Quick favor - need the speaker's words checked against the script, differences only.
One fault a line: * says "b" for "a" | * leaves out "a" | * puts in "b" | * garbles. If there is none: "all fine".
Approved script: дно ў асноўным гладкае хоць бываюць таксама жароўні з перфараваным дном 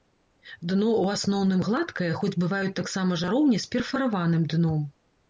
all fine